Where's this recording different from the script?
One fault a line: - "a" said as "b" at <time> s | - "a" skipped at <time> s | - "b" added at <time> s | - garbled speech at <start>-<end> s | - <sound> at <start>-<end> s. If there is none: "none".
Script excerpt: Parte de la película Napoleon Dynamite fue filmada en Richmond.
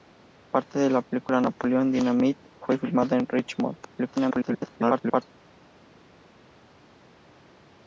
- garbled speech at 3.8-5.2 s